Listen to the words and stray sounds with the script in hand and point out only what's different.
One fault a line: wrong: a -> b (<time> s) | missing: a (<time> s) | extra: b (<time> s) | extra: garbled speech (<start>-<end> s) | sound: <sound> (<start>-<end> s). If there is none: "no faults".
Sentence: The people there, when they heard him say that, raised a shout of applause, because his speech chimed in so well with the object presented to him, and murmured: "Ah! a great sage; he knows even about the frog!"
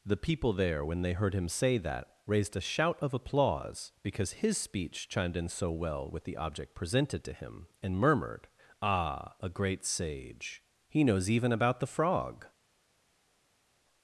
no faults